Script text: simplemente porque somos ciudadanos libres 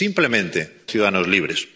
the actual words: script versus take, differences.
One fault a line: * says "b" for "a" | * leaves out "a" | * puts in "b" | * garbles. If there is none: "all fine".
* leaves out "porque somos"